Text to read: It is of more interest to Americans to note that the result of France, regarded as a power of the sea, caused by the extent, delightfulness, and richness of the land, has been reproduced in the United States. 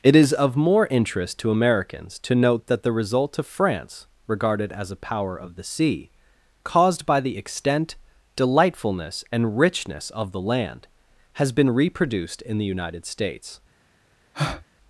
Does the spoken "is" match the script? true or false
true